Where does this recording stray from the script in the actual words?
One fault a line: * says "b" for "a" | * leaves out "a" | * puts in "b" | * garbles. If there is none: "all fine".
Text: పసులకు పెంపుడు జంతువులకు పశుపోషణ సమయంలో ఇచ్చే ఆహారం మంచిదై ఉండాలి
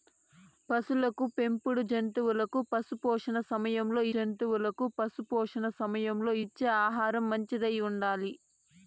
* puts in "జంతువులకు పశుపోషణ సమయంలో"